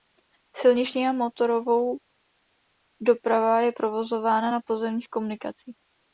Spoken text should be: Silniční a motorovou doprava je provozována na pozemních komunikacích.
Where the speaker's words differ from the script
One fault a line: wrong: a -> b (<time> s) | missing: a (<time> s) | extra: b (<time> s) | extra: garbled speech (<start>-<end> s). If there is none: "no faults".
no faults